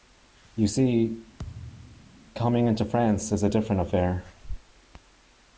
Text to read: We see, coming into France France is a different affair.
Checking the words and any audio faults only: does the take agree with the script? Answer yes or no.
no